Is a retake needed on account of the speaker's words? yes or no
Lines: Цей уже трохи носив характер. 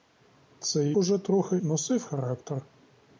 no